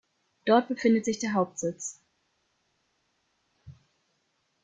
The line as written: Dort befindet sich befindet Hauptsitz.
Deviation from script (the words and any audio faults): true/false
true